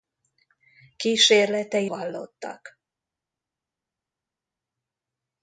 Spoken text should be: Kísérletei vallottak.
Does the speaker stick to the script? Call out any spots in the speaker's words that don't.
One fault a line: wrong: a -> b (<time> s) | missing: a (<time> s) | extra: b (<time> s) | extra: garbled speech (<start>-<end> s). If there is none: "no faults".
no faults